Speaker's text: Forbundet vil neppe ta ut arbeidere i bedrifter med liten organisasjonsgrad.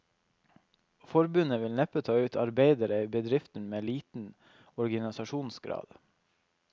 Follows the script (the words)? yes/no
yes